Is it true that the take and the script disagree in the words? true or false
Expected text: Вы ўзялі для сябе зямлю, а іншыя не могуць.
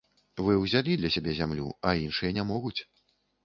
false